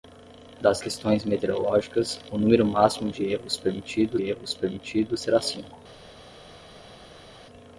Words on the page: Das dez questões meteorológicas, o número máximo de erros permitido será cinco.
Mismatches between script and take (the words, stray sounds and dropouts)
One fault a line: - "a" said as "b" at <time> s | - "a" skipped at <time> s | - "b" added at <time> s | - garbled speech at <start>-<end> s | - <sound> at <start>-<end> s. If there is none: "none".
- "dez" skipped at 0.8 s
- "erros permitido" added at 4.2 s